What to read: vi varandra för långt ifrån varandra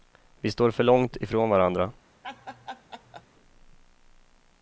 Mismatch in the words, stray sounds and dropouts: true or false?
true